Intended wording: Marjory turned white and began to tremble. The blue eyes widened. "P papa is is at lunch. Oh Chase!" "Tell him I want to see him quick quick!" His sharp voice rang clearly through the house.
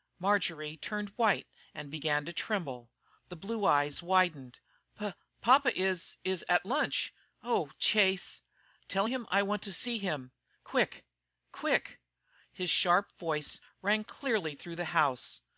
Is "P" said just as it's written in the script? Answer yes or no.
yes